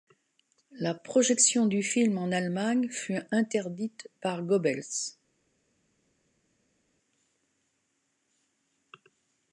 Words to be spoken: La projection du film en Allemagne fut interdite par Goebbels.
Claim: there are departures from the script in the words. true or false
false